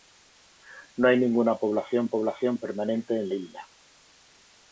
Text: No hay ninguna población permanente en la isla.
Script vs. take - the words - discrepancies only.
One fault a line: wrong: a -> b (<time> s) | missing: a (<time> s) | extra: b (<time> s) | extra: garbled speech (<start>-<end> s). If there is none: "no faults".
extra: población (2.1 s)
missing: la (3.3 s)